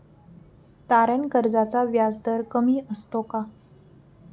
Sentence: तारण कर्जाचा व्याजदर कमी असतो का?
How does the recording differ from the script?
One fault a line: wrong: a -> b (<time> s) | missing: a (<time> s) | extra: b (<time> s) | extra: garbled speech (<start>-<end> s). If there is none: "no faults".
no faults